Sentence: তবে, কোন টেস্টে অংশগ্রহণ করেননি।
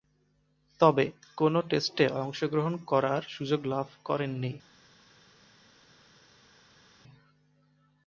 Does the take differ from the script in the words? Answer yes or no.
yes